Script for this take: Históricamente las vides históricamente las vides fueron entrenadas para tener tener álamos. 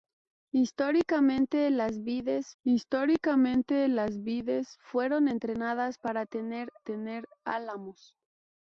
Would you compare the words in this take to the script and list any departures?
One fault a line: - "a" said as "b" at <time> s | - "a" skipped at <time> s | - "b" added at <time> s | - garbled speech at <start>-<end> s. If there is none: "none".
none